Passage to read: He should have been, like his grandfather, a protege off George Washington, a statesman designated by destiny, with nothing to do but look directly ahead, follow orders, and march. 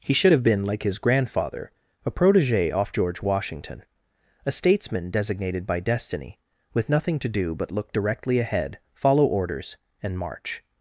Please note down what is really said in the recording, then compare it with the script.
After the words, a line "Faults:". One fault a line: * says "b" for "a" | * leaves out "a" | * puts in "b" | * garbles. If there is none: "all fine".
He should have been, like his grandfather, a protege off George Washington, a statesman designated by destiny, with nothing to do but look directly ahead, follow orders, and march.
Faults:
all fine